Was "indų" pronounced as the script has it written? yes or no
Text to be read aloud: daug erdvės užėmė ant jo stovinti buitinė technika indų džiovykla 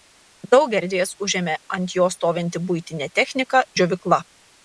no